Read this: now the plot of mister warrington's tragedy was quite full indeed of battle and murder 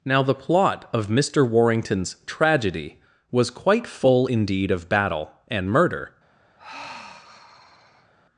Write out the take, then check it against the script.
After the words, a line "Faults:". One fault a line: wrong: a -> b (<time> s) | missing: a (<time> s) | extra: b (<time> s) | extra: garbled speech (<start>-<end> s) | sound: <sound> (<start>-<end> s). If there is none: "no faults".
now the plot of mister warrington's tragedy was quite full indeed of battle and murder
Faults:
sound: sigh (6.6-8.1 s)